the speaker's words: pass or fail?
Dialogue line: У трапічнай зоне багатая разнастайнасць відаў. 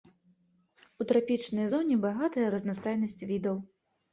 pass